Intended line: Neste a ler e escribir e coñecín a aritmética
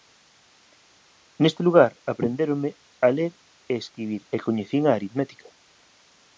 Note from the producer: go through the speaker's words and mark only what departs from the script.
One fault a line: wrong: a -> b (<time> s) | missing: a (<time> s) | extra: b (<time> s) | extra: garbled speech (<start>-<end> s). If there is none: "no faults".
extra: lugar aprendéronme (1.7 s)